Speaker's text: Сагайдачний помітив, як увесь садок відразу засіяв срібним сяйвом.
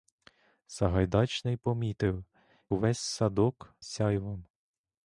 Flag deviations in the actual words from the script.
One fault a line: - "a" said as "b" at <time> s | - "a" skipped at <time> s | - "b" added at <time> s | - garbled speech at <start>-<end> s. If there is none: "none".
- "як" skipped at 2.2 s
- "відразу засіяв срібним" skipped at 3.7 s